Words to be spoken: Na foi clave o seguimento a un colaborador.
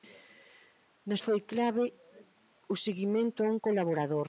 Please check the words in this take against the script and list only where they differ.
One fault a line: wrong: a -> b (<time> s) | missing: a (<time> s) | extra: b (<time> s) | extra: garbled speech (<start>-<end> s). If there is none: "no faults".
no faults